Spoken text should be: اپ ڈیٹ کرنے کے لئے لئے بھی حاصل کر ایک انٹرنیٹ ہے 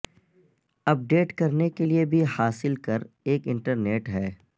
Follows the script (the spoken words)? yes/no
no